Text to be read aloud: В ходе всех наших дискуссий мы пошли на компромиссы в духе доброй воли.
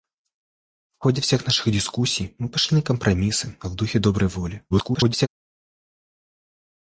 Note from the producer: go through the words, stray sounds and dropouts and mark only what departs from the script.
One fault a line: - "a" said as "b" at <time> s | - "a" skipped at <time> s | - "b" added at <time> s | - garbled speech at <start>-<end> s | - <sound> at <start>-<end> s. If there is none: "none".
- garbled speech at 4.7-5.3 s